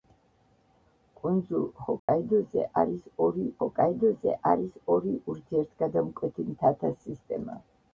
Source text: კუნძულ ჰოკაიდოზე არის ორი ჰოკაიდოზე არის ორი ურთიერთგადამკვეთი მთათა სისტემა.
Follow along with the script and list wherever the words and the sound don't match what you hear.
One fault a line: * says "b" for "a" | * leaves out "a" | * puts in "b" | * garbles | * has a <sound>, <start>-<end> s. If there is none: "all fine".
* has a dropout, 2.0-2.1 s